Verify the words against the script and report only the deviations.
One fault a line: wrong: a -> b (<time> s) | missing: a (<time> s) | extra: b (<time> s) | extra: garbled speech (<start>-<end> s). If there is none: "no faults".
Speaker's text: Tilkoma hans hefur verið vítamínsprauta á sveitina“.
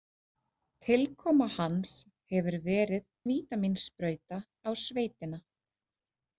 no faults